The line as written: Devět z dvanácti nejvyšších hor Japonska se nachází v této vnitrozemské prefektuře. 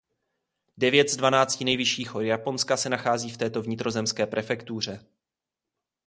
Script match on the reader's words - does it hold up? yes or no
yes